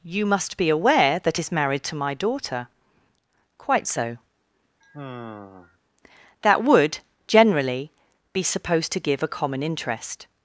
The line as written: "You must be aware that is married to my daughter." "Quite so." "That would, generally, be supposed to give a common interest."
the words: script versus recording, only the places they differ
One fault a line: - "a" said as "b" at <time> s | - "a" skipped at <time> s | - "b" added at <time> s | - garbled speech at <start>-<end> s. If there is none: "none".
none